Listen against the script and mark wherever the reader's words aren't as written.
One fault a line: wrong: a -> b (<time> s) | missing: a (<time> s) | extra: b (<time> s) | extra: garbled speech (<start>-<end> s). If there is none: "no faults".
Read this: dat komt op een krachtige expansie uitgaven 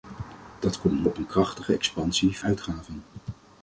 no faults